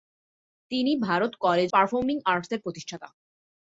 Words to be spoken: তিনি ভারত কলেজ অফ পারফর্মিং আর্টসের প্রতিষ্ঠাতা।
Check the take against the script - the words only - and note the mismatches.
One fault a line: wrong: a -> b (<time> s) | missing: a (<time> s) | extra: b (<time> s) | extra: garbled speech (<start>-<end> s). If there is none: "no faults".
missing: অফ (1.7 s)